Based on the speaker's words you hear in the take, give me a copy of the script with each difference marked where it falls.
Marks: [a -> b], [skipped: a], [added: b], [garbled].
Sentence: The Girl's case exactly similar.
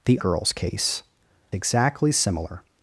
The Girl's case exactly similar.